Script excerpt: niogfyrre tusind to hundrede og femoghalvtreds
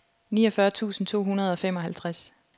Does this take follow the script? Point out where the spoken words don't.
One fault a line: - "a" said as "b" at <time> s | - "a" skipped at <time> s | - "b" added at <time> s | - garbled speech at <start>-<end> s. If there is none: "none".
none